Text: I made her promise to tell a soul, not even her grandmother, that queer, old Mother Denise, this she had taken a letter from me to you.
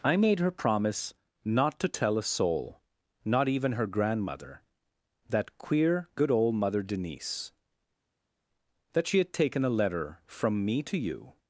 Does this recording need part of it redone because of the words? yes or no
yes